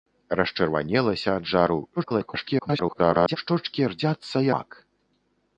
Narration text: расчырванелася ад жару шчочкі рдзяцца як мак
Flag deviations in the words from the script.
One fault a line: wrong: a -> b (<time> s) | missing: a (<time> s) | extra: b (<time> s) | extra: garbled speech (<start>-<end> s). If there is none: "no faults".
extra: garbled speech (2.0-3.4 s)
missing: як (4.5 s)